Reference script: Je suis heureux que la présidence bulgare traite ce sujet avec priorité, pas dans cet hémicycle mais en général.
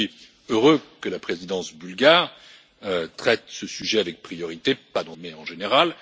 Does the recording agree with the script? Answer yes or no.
no